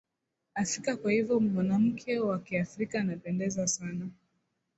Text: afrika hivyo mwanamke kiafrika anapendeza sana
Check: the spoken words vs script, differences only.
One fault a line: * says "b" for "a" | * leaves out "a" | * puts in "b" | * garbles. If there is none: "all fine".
* puts in "kwa"
* puts in "wa"